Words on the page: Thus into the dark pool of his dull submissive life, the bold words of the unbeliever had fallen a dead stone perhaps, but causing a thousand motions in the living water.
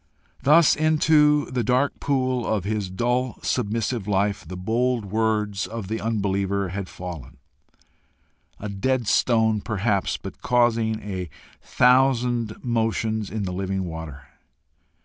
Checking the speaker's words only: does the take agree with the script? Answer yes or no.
yes